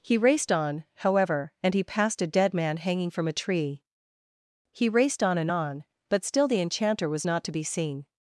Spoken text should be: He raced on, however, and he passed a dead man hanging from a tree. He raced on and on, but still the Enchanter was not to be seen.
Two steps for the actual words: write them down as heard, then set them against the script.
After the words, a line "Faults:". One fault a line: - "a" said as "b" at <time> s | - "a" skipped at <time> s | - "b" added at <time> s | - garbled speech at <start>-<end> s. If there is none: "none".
He raced on, however, and he passed a dead man hanging from a tree. He raced on and on, but still the Enchanter was not to be seen.
Faults:
none